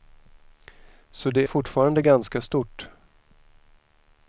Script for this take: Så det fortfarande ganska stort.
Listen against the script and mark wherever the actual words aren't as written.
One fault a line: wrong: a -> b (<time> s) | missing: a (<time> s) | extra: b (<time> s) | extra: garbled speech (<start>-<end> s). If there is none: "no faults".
no faults